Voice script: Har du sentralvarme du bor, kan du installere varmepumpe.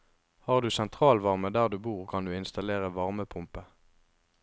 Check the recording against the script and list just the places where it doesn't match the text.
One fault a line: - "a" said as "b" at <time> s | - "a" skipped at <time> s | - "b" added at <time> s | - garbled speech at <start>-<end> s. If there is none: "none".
- "der" added at 1.5 s